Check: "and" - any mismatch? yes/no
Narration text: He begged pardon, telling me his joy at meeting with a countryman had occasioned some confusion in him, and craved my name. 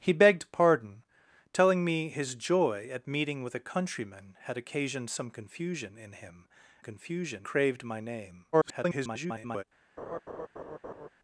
yes